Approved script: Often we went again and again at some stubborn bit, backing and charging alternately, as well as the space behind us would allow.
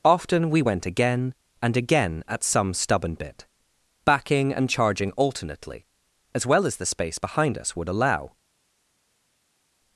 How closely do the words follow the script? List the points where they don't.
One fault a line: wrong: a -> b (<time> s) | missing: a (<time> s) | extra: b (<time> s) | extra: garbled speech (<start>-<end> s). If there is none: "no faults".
no faults